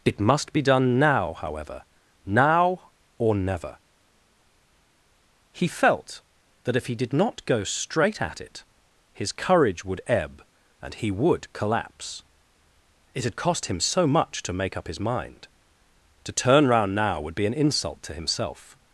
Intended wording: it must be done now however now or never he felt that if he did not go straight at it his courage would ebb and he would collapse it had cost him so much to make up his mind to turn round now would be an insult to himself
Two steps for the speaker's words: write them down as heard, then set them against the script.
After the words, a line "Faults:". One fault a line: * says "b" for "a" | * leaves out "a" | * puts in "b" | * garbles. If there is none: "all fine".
it must be done now however now or never he felt that if he did not go straight at it his courage would ebb and he would collapse it had cost him so much to make up his mind to turn round now would be an insult to himself
Faults:
all fine